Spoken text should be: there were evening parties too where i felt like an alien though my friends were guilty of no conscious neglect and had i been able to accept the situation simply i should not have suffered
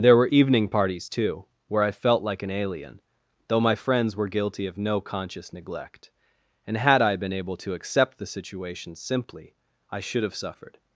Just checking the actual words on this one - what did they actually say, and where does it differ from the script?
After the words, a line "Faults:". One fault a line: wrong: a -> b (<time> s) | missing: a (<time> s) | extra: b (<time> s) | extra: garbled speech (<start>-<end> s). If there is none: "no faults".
there were evening parties too where i felt like an alien though my friends were guilty of no conscious neglect and had i been able to accept the situation simply i should have suffered
Faults:
missing: not (10.2 s)